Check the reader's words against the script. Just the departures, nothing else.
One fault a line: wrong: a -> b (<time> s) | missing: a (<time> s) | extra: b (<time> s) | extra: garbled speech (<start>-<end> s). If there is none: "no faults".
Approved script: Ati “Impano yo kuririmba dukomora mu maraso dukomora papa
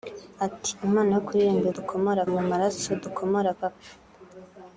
no faults